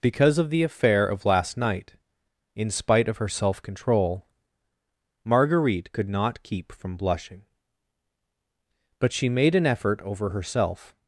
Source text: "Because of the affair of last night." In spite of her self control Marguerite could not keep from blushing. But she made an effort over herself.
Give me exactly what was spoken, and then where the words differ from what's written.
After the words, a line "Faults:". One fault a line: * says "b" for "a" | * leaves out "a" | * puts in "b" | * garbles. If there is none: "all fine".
"Because of the affair of last night." In spite of her self control Marguerite could not keep from blushing. But she made an effort over herself.
Faults:
all fine